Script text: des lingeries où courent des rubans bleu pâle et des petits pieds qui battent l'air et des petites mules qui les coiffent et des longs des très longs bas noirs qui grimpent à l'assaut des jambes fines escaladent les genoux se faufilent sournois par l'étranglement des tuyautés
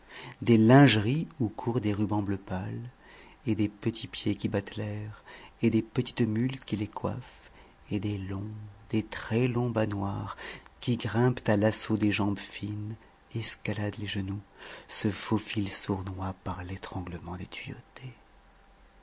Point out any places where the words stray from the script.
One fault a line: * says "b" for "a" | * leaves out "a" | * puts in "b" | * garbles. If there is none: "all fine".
all fine